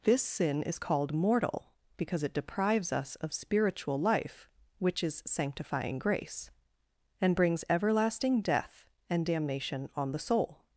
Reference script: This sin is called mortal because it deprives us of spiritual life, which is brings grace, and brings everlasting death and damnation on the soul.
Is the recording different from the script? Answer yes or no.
yes